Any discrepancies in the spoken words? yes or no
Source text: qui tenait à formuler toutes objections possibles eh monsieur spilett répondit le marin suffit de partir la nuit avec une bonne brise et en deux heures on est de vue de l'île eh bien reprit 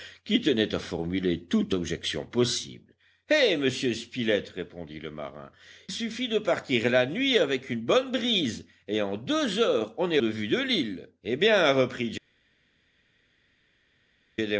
no